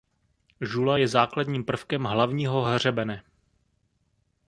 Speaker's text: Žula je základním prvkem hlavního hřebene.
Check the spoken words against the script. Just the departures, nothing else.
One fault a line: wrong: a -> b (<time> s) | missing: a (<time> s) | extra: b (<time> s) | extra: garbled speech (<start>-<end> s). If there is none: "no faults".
no faults